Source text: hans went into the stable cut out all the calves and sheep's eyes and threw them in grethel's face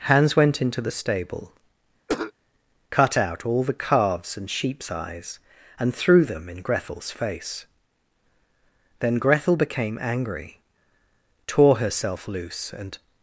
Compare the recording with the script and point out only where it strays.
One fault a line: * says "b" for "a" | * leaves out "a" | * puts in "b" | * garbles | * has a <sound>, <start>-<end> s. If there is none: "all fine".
* has a cough, 2.1-2.3 s
* puts in "then grethel became angry tore herself loose and"